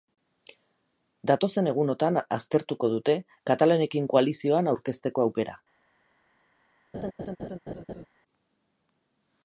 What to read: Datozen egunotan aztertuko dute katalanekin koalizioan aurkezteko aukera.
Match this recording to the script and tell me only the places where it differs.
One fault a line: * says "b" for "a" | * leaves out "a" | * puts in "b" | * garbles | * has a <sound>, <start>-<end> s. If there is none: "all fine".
* has a laugh, 6.9-8.1 s